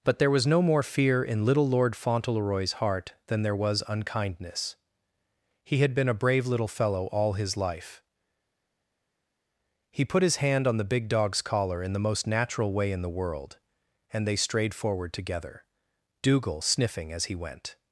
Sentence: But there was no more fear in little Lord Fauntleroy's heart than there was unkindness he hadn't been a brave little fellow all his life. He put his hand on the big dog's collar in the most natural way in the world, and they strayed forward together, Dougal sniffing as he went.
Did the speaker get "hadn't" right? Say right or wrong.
wrong